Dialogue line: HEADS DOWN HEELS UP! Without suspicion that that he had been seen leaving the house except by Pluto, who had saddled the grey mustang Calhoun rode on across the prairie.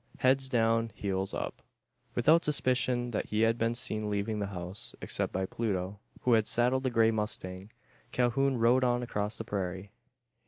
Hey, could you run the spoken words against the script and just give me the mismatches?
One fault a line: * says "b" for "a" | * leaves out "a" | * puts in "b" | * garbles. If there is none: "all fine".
* leaves out "that"